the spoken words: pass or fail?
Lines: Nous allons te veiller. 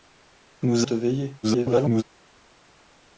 fail